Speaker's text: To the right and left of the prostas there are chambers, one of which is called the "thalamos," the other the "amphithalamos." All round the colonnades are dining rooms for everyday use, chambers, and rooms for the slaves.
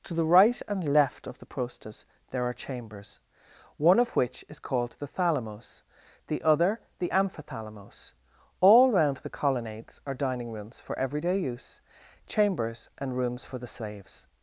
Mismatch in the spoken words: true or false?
false